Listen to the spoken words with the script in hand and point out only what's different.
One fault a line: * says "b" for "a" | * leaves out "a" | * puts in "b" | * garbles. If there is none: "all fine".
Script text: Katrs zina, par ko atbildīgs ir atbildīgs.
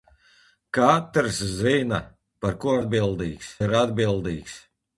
all fine